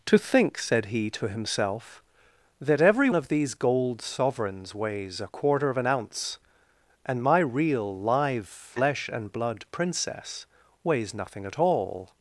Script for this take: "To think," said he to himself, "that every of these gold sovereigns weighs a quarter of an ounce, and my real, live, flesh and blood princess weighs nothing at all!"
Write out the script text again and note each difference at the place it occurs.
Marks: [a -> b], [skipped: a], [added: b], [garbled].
"To think," said he to himself, "that every of these gold sovereigns weighs a quarter of an ounce, and my real, live, flesh and blood princess weighs nothing at all!"